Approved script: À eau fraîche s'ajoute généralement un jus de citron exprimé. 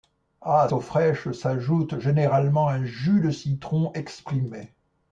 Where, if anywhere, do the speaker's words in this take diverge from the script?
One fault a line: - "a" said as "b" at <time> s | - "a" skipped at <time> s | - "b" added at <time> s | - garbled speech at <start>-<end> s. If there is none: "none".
none